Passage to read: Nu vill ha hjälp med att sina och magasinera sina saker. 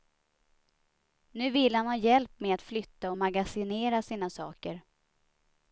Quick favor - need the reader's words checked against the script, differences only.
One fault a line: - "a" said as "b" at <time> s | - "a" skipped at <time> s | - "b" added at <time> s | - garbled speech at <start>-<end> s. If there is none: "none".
- "han" added at 1.8 s
- "sina" said as "flytta" at 2.6 s